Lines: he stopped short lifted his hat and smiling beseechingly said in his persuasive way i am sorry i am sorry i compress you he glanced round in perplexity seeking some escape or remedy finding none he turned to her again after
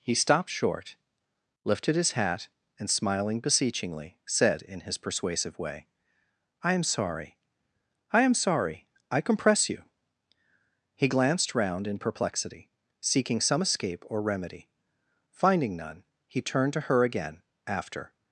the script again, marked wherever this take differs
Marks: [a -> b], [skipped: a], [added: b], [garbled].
he stopped short lifted his hat and smiling beseechingly said in his persuasive way i am sorry i am sorry i compress you he glanced round in perplexity seeking some escape or remedy finding none he turned to her again after